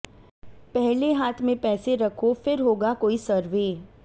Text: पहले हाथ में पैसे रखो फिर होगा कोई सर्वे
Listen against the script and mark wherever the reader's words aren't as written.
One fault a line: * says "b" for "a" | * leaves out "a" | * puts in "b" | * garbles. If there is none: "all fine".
all fine